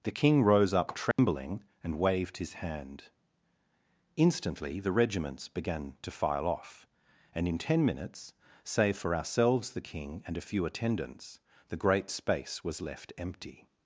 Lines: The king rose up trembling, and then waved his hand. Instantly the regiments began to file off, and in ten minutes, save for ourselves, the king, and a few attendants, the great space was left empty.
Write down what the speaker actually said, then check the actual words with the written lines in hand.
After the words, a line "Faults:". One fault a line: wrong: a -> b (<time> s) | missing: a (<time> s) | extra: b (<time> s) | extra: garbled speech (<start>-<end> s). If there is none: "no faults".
The king rose up trembling, and waved his hand. Instantly the regiments began to file off, and in ten minutes, save for ourselves, the king, and a few attendants, the great space was left empty.
Faults:
missing: then (2.0 s)